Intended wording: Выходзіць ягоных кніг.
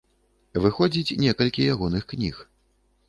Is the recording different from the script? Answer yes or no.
yes